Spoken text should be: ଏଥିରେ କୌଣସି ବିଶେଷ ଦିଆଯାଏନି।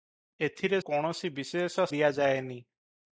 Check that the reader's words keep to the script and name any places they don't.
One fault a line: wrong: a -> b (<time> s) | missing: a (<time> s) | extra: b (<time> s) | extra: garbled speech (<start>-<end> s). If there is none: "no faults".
no faults